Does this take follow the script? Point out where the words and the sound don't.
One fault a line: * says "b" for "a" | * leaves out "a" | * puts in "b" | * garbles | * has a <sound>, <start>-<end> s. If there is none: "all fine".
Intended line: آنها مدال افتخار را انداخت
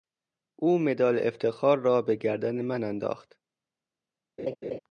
* says "او" for "آنها"
* puts in "به گردن من"
* has a laugh, 4.4-4.8 s